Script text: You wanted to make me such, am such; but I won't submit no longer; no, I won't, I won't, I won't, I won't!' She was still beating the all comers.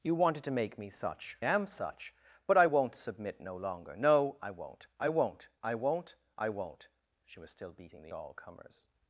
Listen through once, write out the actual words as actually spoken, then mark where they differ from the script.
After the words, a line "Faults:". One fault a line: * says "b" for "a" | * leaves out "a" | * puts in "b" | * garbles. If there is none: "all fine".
You wanted to make me such, am such; but I won't submit no longer; no, I won't, I won't, I won't, I won't!' She was still beating the all comers.
Faults:
all fine